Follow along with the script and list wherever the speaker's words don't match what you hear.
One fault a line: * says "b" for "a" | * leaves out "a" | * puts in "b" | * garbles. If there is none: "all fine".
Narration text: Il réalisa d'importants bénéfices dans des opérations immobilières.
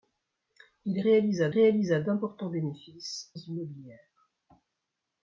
* puts in "réalisa"
* leaves out "dans des opérations"